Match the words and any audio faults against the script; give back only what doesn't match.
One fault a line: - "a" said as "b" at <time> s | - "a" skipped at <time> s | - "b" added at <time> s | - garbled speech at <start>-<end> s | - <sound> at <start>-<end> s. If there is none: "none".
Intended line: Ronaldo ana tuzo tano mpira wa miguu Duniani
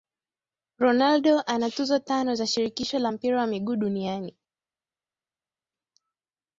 - "za shirikisho la" added at 2.4 s